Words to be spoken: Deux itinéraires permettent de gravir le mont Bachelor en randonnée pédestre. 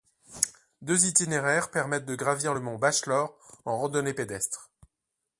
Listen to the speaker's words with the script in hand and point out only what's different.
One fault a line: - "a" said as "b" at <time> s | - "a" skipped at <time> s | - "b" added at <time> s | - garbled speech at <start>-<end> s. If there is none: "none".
none